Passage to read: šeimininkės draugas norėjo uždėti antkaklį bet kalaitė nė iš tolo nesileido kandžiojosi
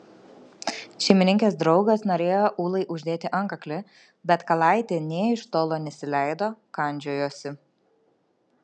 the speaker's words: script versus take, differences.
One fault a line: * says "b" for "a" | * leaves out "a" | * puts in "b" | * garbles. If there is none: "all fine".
* puts in "ūlai"